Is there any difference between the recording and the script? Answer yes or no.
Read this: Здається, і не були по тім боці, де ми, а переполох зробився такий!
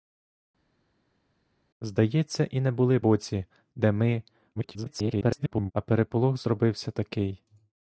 yes